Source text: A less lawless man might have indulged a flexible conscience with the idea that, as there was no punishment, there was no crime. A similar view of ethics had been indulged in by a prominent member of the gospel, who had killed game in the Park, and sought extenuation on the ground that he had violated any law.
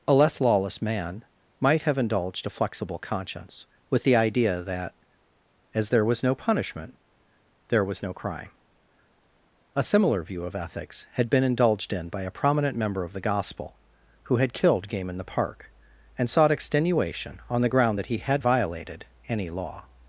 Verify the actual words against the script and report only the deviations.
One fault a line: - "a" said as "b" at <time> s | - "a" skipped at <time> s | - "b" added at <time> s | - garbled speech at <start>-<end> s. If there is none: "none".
none